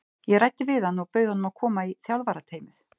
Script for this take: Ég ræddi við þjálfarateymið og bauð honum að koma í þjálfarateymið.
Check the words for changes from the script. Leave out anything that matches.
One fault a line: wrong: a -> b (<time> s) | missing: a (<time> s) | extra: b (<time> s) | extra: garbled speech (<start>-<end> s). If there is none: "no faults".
wrong: þjálfarateymið -> hann (0.9 s)